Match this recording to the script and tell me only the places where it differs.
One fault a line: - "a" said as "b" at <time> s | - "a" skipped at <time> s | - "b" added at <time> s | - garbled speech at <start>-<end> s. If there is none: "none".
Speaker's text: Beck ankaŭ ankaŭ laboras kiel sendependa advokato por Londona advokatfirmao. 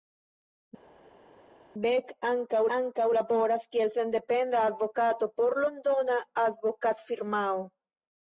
none